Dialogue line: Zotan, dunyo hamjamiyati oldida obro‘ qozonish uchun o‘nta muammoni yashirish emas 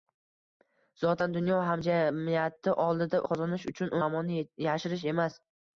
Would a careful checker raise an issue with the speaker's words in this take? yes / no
yes